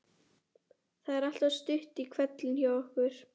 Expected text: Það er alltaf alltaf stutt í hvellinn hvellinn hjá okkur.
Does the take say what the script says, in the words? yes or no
no